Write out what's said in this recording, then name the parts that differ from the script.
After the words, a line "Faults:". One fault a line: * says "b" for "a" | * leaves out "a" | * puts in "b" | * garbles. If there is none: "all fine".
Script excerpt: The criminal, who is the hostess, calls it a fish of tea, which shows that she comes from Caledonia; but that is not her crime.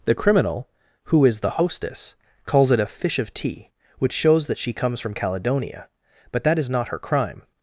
The criminal, who is the hostess, calls it a fish of tea, which shows that she comes from Caledonia; but that is not her crime.
Faults:
all fine